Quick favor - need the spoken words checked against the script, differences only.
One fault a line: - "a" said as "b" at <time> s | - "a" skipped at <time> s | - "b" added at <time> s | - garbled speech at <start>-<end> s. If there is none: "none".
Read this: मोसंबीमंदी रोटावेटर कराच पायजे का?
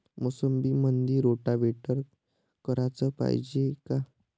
none